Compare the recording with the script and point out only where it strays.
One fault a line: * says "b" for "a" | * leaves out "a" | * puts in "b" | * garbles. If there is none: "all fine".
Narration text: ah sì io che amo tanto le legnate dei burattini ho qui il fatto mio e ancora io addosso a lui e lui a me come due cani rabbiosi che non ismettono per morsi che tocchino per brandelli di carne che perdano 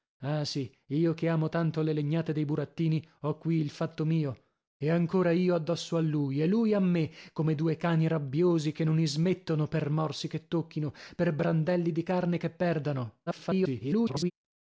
* garbles